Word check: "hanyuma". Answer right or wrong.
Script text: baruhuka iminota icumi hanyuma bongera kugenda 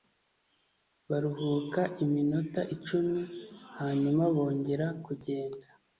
right